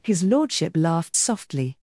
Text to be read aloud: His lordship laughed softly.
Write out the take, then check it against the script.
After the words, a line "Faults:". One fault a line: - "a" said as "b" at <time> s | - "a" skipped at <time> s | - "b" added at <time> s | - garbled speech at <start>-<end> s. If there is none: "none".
His lordship laughed softly.
Faults:
none